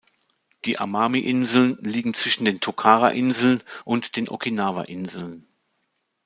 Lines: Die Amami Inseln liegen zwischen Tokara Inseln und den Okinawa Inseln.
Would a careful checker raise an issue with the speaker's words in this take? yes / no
yes